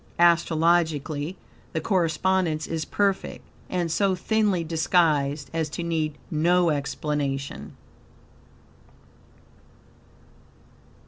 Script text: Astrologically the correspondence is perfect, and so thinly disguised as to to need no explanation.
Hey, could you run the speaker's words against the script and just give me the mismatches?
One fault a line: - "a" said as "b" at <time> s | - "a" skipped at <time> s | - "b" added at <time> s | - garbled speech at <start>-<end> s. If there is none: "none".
- "to" skipped at 5.8 s